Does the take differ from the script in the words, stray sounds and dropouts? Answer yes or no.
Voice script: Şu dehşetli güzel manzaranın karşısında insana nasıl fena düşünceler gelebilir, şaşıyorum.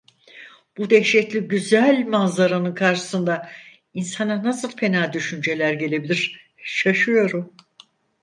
yes